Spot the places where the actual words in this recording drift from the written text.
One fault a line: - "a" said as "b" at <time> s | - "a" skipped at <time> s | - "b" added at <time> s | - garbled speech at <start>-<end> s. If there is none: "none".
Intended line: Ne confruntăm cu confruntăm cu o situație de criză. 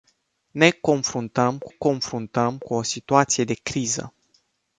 none